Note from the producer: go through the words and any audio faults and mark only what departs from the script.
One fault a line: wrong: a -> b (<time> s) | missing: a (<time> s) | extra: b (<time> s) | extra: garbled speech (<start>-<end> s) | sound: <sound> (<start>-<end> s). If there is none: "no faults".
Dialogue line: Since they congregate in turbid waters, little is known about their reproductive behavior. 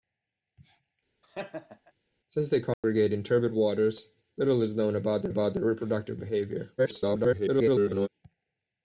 sound: laugh (1.2-1.9 s)
sound: dropout (2.7-2.8 s)
extra: about their (5.3 s)
extra: garbled speech (6.8-8.1 s)